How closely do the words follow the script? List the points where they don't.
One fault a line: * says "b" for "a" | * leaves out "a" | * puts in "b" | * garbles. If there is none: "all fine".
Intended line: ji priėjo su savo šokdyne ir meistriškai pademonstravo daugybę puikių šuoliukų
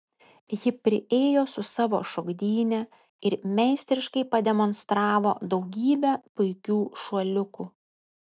all fine